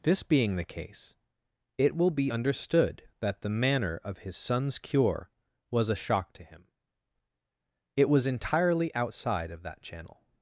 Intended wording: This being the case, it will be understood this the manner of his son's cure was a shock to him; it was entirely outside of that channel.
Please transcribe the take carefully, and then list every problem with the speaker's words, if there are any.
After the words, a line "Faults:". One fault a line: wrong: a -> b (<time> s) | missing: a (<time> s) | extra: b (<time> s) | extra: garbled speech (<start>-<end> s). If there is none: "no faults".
This being the case, it will be understood that the manner of his son's cure was a shock to him; it was entirely outside of that channel.
Faults:
wrong: this -> that (3.2 s)